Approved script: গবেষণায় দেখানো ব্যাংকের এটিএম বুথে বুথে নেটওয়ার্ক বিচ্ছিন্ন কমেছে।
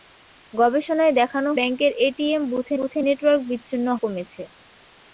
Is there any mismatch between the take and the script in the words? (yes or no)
no